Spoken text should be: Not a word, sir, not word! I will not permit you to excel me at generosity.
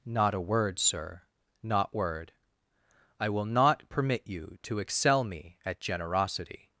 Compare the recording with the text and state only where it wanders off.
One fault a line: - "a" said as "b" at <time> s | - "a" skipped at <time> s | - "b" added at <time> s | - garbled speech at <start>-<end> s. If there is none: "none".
none